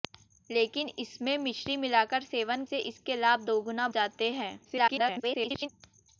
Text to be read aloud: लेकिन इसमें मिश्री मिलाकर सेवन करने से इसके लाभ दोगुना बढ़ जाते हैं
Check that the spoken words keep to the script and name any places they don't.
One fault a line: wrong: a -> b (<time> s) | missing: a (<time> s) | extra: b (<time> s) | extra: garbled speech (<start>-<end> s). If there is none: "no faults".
missing: करने (2.6 s)
missing: बढ़ (3.9 s)
extra: garbled speech (4.6-5.7 s)